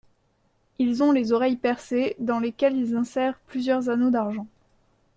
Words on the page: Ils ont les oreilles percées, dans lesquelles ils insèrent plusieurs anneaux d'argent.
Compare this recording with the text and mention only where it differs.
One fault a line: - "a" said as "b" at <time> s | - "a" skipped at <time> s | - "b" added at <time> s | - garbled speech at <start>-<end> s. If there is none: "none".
none